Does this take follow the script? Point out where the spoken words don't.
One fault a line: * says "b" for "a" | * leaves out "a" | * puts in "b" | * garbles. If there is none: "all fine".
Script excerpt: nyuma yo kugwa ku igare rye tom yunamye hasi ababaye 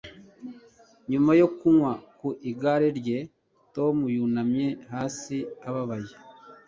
all fine